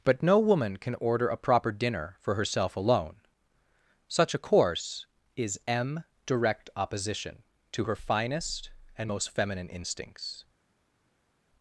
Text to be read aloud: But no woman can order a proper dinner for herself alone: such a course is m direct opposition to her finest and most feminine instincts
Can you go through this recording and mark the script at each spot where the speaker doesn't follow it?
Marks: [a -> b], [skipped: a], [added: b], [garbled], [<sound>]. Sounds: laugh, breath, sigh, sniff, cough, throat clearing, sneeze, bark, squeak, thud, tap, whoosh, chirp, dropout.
But no woman can order a proper dinner for herself alone: such a course is m direct opposition to her finest and most feminine instincts